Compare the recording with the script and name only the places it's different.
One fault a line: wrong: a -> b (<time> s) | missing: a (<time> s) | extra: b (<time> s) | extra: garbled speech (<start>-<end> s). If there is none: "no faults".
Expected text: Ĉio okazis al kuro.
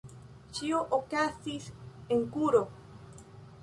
wrong: al -> en (2.2 s)